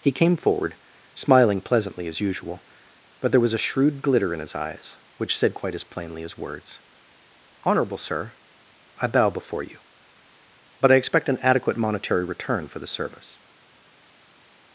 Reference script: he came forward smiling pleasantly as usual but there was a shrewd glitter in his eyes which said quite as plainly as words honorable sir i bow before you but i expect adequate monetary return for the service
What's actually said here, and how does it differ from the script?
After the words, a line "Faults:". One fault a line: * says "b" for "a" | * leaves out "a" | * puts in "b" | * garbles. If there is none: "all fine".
he came forward smiling pleasantly as usual but there was a shrewd glitter in his eyes which said quite as plainly as words honorable sir i bow before you but i expect an adequate monetary return for the service
Faults:
* puts in "an"